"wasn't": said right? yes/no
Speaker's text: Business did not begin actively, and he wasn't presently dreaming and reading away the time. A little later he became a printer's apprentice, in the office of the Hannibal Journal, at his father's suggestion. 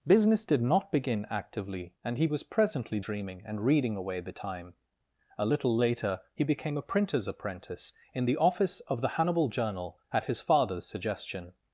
no